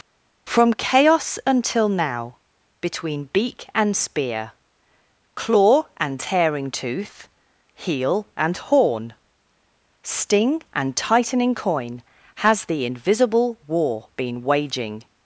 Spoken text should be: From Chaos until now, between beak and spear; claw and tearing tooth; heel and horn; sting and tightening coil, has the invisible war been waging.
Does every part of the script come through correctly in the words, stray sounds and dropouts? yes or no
no